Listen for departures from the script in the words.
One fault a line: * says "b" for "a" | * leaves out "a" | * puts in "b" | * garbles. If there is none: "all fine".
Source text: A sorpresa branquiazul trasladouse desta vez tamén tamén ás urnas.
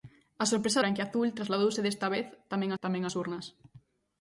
all fine